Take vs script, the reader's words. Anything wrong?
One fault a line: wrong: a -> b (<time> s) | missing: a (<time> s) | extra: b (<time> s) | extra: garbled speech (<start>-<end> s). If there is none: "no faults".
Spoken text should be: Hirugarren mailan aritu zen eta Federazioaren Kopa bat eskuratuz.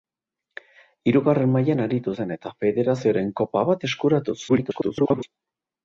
extra: garbled speech (4.5-5.2 s)